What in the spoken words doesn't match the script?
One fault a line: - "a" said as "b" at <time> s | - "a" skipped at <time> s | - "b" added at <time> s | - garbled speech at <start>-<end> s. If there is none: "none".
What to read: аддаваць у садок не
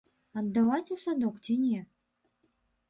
- "ці" added at 1.4 s